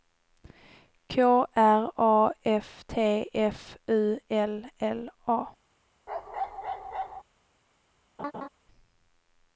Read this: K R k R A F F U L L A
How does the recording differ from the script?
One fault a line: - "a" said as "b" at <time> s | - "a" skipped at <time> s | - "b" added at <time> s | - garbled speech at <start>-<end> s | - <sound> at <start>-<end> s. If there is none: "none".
- "k R" skipped at 1.9 s
- "T" added at 2.9 s
- bark at 6.1-7.2 s
- laugh at 8.2-8.5 s